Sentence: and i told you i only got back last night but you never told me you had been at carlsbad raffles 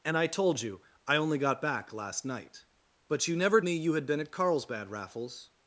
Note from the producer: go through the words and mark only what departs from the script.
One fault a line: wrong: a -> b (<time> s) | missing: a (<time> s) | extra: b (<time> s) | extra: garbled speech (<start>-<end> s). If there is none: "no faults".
missing: told (3.6 s)